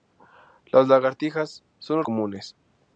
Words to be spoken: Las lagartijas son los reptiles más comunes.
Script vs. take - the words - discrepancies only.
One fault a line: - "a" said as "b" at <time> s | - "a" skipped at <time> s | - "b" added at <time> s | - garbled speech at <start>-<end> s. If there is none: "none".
- "reptiles más" skipped at 2.1 s